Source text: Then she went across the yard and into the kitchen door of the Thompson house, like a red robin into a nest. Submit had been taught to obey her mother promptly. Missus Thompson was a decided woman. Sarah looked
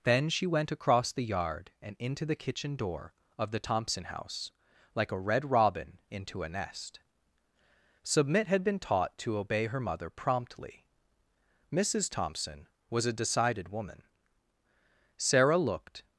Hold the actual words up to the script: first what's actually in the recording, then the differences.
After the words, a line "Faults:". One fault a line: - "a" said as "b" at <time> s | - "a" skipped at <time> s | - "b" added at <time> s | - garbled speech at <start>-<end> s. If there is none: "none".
Then she went across the yard and into the kitchen door of the Thompson house, like a red robin into a nest. Submit had been taught to obey her mother promptly. Missus Thompson was a decided woman. Sarah looked
Faults:
none